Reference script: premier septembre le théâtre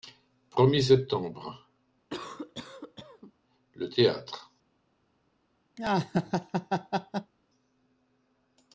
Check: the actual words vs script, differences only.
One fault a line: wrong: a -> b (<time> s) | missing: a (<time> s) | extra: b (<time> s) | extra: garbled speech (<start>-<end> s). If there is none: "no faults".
no faults